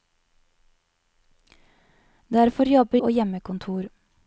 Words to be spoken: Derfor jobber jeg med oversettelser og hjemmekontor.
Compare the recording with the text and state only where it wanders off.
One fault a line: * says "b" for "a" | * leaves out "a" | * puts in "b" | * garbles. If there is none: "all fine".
* leaves out "jeg med oversettelser"